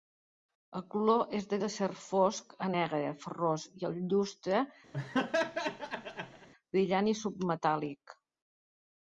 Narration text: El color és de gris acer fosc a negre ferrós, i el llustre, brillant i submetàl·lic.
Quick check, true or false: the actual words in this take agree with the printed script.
false